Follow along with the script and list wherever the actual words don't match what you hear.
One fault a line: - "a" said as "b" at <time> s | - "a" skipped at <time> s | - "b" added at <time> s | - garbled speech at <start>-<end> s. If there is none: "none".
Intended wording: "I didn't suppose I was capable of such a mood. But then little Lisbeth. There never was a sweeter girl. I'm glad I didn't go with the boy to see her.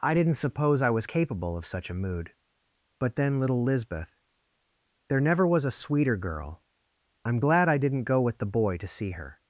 none